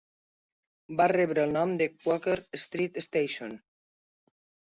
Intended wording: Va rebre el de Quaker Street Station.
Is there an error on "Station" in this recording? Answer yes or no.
no